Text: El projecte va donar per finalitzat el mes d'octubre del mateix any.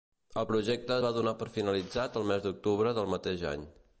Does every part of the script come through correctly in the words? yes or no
yes